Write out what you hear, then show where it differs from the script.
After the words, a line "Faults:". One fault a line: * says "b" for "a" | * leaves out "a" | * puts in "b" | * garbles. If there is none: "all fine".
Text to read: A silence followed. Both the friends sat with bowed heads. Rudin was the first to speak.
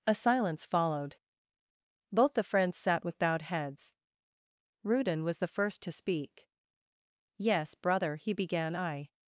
A silence followed. Both the friends sat with bowed heads. Rudin was the first to speak. 'Yes, brother,' he began, 'I
Faults:
* puts in "Yes brother he began I"